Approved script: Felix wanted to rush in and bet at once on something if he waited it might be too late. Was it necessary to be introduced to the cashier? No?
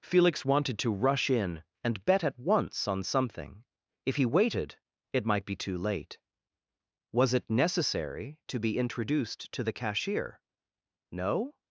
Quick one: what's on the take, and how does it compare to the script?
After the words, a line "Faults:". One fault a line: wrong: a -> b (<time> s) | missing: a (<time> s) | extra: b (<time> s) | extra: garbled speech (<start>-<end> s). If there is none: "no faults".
Felix wanted to rush in and bet at once on something if he waited it might be too late. Was it necessary to be introduced to the cashier? No?
Faults:
no faults